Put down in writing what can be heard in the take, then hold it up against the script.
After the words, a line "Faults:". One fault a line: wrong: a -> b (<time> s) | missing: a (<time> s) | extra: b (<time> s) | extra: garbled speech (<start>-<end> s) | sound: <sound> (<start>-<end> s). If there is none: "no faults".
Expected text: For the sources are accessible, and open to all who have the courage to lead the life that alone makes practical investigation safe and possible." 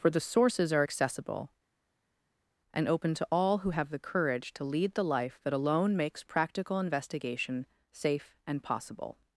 For the sources are accessible, and open to all who have the courage to lead the life that alone makes practical investigation safe and possible."
Faults:
no faults